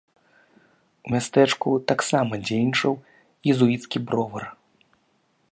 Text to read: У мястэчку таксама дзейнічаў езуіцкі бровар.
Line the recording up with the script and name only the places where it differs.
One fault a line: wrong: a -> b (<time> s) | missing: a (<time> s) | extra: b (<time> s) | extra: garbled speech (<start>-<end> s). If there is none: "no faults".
no faults